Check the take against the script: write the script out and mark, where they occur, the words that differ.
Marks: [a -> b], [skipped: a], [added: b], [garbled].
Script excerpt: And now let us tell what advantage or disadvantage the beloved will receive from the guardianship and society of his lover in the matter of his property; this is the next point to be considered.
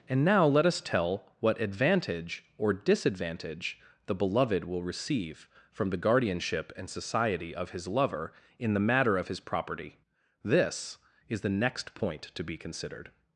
And now let us tell what advantage or disadvantage the beloved will receive from the guardianship and society of his lover in the matter of his property; this is the next point to be considered.